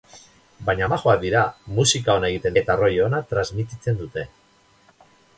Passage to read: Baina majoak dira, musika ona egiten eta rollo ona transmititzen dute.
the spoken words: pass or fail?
pass